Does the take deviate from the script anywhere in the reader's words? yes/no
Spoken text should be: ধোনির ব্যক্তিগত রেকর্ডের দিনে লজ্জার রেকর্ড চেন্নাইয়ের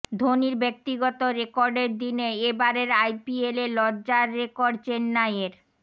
yes